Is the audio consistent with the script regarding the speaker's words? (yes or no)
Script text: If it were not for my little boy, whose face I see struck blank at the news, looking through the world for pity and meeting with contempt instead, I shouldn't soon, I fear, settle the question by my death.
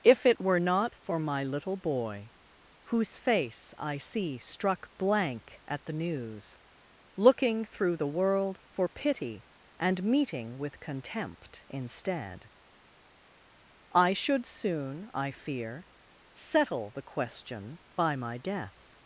no